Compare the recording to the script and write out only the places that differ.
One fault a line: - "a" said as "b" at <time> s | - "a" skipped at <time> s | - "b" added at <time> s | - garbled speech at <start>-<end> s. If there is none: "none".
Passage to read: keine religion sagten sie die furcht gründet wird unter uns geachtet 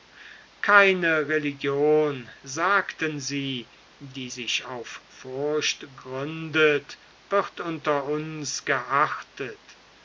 - "sich auf" added at 4.3 s